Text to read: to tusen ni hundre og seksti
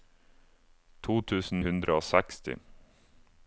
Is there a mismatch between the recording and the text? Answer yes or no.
yes